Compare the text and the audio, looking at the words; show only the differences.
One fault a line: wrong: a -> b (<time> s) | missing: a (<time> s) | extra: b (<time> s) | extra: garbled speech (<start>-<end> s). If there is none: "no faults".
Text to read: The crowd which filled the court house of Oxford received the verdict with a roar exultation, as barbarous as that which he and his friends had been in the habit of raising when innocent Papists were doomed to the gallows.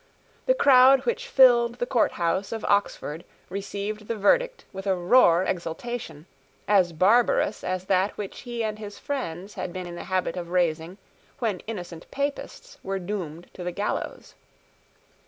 no faults